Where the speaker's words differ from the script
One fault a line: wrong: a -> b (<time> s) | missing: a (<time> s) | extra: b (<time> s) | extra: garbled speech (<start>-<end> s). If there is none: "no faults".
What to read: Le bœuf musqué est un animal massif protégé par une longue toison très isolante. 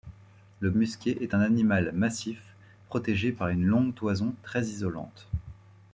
missing: bœuf (0.7 s)